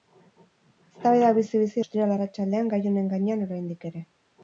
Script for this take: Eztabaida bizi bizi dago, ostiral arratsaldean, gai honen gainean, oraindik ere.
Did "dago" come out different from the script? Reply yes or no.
yes